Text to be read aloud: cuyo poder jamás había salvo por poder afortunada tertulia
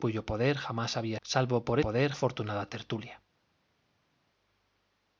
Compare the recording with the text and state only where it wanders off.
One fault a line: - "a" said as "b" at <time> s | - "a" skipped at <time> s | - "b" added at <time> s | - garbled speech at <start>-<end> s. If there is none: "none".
none